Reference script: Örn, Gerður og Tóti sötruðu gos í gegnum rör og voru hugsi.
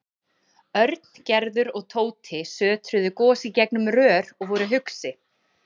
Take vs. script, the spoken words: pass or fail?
pass